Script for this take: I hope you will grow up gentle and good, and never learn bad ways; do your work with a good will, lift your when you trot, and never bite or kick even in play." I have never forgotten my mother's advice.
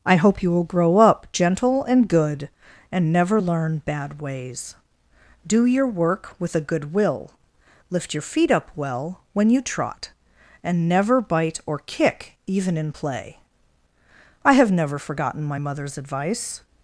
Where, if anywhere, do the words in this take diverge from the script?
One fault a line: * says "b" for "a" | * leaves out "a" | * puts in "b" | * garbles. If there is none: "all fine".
* puts in "feet up well"